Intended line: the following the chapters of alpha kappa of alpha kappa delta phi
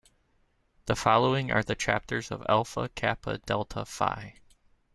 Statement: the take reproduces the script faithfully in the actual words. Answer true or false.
false